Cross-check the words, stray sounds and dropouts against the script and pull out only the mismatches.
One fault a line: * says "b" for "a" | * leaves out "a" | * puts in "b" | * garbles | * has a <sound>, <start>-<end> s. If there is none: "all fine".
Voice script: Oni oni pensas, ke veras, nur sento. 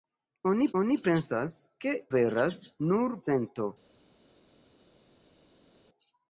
all fine